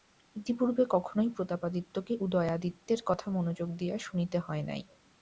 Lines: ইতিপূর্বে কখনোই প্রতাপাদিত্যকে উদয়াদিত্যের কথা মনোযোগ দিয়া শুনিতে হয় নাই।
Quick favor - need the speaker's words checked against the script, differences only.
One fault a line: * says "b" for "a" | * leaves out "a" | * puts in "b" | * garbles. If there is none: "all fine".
all fine